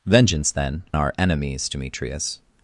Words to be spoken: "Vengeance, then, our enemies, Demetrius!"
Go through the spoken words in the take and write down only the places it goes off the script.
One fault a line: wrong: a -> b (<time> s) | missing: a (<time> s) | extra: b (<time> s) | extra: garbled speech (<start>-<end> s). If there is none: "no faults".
no faults